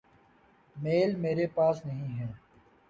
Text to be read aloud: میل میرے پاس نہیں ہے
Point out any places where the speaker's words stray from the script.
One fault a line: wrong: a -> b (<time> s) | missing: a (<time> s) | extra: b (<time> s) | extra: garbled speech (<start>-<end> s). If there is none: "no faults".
no faults